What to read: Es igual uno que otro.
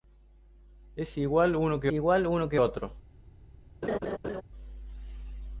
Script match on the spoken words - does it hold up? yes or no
no